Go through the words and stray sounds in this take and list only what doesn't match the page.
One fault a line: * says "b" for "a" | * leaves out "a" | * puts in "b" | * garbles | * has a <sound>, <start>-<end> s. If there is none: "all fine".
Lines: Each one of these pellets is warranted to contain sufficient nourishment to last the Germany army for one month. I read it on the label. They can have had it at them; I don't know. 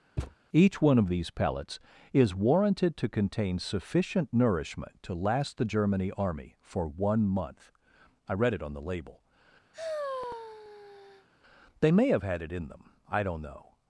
* has a thud, 0.2-0.3 s
* has a sigh, 9.7-11.3 s
* says "may" for "can"
* says "in" for "at"